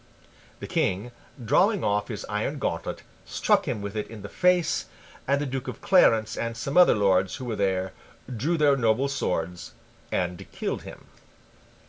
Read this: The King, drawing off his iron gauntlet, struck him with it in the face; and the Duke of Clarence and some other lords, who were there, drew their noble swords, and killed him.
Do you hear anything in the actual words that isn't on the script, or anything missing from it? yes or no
no